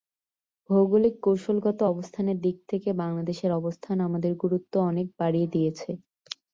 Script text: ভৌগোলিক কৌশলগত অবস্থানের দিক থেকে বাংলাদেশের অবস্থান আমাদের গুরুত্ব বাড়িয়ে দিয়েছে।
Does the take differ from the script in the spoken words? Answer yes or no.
yes